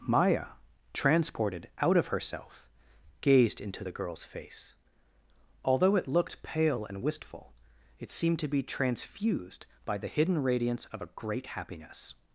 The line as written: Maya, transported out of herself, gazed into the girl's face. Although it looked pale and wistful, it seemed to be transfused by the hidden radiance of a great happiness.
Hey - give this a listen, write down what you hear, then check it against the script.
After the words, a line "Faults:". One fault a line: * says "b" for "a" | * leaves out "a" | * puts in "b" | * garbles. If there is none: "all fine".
Maya, transported out of herself, gazed into the girl's face. Although it looked pale and wistful, it seemed to be transfused by the hidden radiance of a great happiness.
Faults:
all fine